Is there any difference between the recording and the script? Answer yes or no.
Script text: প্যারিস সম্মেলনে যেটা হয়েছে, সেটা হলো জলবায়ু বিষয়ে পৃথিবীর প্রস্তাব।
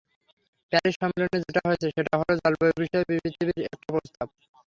yes